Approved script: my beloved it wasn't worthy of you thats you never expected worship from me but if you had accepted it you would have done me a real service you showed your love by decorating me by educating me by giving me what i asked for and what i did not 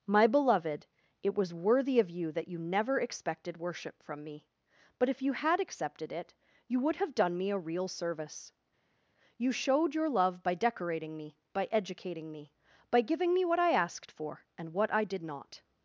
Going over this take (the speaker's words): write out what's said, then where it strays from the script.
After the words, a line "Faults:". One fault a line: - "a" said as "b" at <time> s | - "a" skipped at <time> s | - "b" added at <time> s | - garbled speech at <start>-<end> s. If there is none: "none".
my beloved it was worthy of you that you never expected worship from me but if you had accepted it you would have done me a real service you showed your love by decorating me by educating me by giving me what i asked for and what i did not
Faults:
- "wasn't" said as "was" at 1.4 s
- "thats" said as "that" at 2.3 s